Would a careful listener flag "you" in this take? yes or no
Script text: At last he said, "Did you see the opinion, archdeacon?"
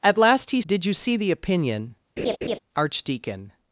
no